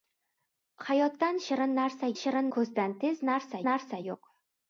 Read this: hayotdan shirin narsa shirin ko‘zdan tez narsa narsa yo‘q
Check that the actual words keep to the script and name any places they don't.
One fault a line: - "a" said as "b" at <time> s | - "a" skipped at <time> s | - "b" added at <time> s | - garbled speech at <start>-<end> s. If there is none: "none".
none